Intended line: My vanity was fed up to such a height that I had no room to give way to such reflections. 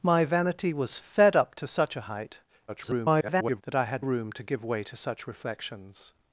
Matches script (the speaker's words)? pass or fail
fail